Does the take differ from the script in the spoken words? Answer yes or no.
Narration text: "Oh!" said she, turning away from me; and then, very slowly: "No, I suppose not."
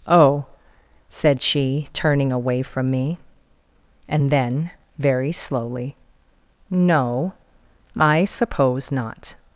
no